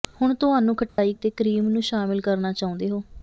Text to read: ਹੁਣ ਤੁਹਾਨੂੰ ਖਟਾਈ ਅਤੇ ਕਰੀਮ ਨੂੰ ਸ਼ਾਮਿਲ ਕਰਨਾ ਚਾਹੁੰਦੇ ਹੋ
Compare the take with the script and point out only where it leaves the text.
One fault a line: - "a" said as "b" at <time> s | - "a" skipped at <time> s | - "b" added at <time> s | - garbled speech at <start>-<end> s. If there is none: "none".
none